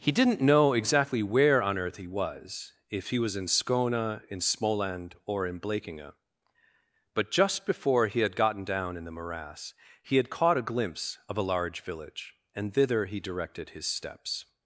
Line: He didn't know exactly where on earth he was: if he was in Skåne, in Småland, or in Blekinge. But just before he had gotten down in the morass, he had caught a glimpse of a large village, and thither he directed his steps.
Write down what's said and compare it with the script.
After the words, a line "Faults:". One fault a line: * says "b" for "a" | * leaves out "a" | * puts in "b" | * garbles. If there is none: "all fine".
He didn't know exactly where on earth he was: if he was in Skåne, in Småland, or in Blekinge. But just before he had gotten down in the morass, he had caught a glimpse of a large village, and thither he directed his steps.
Faults:
all fine